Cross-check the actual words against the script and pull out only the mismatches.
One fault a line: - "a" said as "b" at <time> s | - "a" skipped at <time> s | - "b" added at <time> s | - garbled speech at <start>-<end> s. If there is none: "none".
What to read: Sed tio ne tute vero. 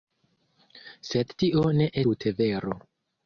none